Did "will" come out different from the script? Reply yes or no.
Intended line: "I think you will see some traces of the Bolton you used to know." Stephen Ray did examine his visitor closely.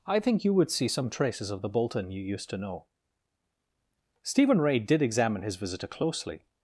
yes